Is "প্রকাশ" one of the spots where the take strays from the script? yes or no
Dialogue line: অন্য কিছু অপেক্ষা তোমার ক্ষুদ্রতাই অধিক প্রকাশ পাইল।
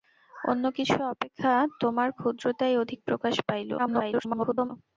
no